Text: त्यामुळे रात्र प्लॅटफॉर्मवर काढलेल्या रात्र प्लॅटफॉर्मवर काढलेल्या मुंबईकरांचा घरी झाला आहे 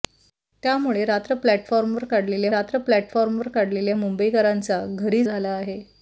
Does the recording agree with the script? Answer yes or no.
yes